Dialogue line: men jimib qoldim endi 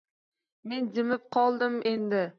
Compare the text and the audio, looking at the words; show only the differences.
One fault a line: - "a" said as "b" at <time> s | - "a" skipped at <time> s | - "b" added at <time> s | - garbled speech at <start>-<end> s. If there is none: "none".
none